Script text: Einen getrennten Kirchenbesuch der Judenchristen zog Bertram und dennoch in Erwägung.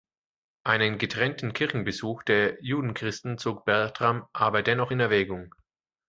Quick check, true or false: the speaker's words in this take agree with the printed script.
false